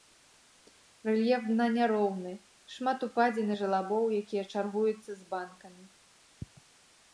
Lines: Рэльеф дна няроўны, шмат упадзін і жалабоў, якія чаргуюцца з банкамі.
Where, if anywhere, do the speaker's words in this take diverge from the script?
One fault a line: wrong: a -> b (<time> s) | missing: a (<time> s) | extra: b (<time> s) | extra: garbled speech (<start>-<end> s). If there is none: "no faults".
no faults